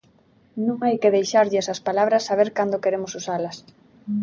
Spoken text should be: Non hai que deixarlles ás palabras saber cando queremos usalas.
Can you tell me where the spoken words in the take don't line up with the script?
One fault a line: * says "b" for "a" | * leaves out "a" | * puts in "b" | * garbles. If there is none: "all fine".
all fine